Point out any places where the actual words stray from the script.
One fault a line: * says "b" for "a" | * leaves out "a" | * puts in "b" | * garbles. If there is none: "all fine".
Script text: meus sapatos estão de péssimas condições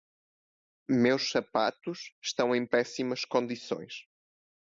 * says "em" for "de"